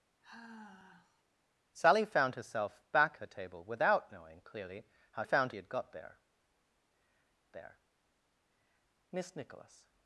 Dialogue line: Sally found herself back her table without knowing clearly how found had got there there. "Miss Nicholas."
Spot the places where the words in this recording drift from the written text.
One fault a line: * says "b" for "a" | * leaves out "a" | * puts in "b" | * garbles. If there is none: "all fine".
all fine